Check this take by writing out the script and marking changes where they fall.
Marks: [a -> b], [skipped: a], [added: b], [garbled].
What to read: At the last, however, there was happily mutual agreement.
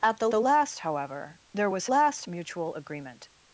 At the [added: the] last, however, there was [happily -> last] mutual agreement.